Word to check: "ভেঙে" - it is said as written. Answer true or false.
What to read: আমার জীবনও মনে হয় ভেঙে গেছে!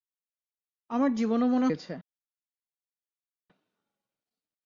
false